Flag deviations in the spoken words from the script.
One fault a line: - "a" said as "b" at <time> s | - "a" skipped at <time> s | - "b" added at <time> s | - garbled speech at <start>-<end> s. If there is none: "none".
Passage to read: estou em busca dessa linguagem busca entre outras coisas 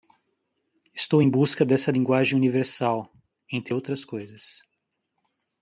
- "busca" said as "universal" at 2.3 s